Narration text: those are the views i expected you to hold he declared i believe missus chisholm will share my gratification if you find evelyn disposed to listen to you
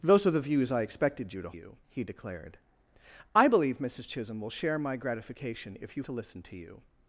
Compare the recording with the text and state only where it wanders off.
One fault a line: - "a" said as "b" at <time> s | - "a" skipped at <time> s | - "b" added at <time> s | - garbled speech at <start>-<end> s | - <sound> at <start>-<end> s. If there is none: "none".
- "hold" said as "you" at 1.5 s
- "find evelyn disposed" skipped at 6.0 s